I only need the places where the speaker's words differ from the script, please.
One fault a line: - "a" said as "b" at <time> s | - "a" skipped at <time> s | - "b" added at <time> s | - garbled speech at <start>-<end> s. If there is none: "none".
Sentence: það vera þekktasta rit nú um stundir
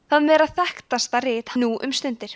none